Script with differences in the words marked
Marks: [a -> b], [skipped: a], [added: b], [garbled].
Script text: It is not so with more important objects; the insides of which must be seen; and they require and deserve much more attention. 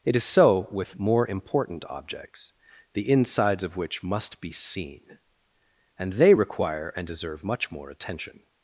It is [skipped: not] so with more important objects; the insides of which must be seen; and they require and deserve much more attention.